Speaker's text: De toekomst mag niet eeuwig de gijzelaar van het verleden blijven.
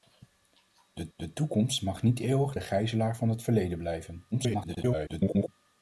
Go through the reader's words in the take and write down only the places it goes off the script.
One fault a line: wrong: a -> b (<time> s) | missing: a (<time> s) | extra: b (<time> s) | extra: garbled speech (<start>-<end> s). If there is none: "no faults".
extra: de (1.2 s)
extra: garbled speech (4.3-5.5 s)